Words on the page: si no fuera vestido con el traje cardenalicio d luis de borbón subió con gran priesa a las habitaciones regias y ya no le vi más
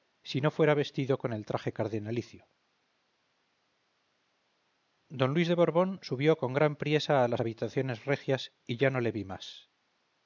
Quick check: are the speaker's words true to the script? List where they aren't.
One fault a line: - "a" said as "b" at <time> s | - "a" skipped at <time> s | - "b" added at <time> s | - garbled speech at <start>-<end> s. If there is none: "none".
none